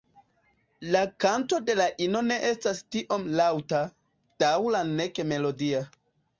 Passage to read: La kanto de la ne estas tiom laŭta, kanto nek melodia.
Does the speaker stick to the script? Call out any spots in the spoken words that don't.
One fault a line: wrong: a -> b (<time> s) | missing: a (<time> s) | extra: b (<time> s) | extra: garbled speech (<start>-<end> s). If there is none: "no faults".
extra: ino (2.1 s)
wrong: kanto -> daŭra (4.5 s)